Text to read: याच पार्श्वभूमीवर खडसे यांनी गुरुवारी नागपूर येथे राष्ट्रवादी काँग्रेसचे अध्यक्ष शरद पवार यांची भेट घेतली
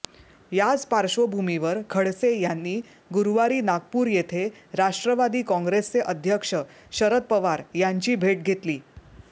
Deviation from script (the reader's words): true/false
false